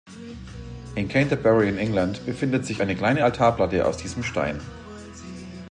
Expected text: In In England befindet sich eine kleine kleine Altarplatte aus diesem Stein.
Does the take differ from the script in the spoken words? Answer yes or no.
yes